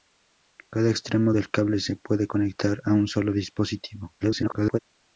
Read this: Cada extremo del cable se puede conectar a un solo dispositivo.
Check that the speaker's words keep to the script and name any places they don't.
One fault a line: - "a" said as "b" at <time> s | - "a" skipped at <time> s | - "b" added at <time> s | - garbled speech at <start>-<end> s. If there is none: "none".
- garbled speech at 4.2-4.8 s